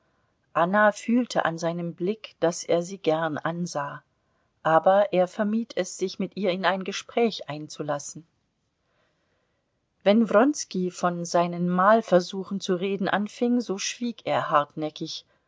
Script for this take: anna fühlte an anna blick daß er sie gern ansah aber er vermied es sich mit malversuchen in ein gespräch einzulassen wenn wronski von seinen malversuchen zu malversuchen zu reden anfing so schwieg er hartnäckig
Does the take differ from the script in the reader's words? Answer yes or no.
yes